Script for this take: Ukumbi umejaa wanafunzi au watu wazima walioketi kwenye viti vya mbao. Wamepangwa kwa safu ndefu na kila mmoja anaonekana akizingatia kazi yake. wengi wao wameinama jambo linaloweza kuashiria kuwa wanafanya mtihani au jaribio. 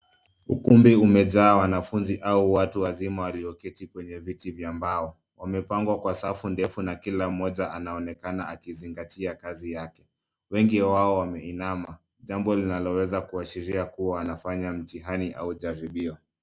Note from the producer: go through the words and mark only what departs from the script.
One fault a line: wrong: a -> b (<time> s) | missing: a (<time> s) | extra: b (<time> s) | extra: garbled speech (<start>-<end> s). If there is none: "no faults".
no faults